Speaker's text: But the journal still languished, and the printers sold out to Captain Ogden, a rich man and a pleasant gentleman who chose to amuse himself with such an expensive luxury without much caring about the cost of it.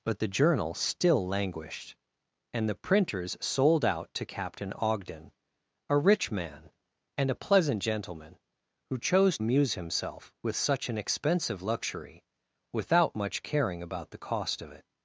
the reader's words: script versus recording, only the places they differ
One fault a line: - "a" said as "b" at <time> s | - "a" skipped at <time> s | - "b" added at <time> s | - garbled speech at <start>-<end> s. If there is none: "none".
- "to" skipped at 9.4 s